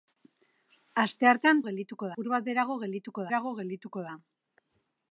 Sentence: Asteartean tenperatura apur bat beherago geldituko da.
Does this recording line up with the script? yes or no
no